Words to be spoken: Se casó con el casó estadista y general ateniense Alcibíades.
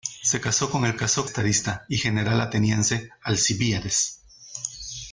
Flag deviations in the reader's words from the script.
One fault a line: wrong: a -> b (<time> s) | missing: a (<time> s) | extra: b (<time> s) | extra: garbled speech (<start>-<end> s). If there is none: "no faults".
no faults